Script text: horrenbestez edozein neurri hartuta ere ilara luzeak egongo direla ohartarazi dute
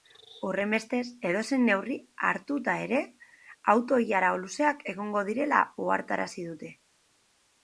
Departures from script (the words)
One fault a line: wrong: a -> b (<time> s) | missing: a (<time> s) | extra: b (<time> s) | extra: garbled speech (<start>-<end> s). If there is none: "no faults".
extra: auto (3.8 s)